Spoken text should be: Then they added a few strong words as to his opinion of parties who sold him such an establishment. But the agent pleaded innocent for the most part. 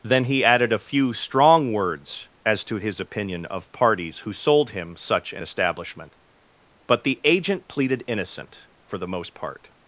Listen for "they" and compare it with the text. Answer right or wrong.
wrong